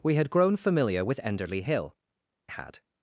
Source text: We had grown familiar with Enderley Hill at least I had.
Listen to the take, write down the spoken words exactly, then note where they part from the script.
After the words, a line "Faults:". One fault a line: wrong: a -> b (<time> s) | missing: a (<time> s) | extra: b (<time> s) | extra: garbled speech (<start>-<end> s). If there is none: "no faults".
We had grown familiar with Enderley Hill had.
Faults:
missing: at least I (1.9 s)